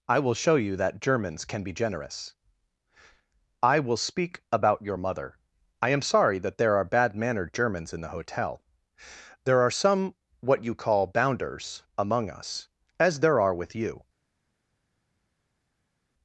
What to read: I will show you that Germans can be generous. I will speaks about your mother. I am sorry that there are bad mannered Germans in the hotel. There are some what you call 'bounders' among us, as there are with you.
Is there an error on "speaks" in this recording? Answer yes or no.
yes